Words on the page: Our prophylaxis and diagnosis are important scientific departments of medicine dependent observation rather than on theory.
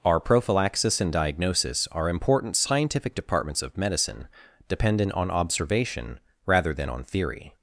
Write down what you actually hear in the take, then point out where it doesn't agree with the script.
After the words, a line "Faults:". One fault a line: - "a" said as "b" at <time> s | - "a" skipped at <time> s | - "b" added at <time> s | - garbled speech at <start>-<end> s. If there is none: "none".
Our prophylaxis and diagnosis are important scientific departments of medicine dependent on observation rather than on theory.
Faults:
- "on" added at 5.1 s